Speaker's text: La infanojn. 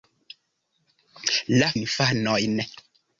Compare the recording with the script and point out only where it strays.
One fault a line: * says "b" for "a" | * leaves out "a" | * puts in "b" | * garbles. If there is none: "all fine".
all fine